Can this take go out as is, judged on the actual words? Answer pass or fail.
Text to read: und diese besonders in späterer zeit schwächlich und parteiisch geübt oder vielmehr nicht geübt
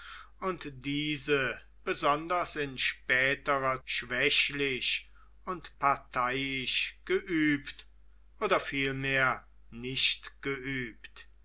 fail